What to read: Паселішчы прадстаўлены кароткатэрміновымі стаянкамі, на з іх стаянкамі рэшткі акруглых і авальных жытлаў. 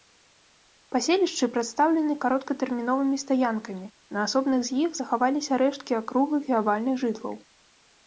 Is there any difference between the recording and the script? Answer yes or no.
yes